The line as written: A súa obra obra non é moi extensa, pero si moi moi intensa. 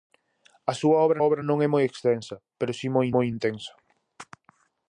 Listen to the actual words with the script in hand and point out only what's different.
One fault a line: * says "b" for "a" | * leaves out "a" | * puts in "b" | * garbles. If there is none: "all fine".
all fine